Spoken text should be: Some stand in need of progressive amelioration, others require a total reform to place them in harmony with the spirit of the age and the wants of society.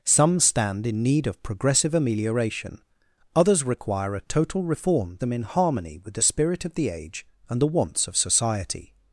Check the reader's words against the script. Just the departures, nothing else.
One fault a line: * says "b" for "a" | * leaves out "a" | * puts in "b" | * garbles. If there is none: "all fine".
* leaves out "to place"